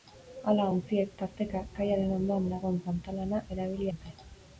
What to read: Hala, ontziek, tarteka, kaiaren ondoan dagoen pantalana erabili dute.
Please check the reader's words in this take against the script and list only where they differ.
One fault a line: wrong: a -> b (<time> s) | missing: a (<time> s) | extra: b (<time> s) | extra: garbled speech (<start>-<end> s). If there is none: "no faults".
no faults